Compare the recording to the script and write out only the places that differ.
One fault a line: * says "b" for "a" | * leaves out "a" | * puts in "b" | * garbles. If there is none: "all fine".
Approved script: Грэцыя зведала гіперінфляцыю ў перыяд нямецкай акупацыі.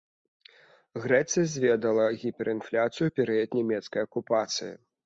all fine